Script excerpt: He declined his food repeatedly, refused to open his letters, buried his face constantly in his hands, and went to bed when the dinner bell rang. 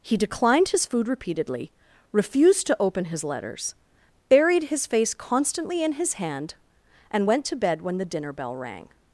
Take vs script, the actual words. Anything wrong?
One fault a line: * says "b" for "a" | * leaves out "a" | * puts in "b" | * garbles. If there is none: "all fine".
* says "hand" for "hands"